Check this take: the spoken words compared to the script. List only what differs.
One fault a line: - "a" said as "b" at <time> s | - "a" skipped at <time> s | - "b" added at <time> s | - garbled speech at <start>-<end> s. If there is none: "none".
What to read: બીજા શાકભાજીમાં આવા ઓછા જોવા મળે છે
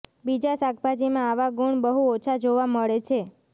- "ગુણ બહુ" added at 1.6 s